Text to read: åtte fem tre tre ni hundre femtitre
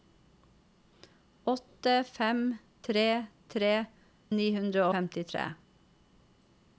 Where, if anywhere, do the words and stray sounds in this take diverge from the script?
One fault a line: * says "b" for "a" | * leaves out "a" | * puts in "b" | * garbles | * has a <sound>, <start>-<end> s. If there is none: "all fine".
all fine